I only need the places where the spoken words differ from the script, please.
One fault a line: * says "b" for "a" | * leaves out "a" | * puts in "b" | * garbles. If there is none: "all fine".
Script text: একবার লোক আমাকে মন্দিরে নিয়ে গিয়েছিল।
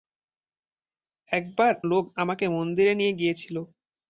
all fine